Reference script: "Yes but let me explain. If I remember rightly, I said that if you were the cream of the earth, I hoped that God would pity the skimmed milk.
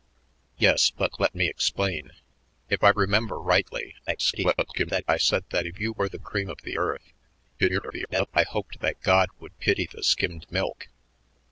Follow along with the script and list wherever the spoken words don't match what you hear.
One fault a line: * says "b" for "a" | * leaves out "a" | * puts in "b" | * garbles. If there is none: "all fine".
* garbles
* garbles